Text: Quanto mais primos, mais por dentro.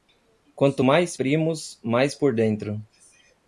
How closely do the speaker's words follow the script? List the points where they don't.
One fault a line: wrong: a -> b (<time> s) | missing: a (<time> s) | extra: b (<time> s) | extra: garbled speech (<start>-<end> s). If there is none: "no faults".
no faults